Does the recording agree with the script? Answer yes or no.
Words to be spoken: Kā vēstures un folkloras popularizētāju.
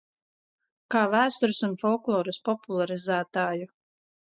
yes